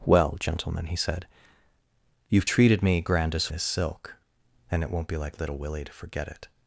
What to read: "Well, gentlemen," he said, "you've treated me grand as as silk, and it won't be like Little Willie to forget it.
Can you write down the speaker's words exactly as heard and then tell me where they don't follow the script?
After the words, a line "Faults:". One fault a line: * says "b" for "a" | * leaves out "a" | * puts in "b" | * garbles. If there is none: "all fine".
"Well, gentlemen," he said, "you've treated me grand as as silk, and it won't be like Little Willie to forget it.
Faults:
all fine